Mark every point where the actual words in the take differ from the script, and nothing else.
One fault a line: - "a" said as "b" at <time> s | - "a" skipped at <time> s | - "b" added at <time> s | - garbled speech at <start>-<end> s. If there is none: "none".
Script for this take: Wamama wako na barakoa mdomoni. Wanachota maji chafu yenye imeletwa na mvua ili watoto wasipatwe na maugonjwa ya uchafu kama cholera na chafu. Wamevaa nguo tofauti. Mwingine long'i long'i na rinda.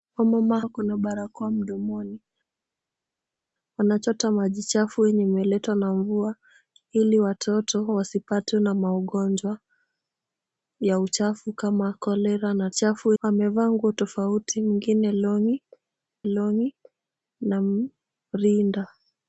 none